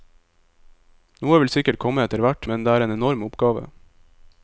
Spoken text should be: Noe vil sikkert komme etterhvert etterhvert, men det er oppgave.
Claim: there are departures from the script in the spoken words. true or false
true